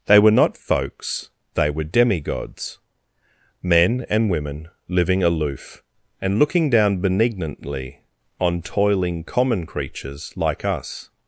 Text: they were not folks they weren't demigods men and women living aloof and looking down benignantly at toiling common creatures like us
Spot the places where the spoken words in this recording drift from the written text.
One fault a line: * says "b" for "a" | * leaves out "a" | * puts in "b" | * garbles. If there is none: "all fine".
* says "were" for "weren't"
* says "on" for "at"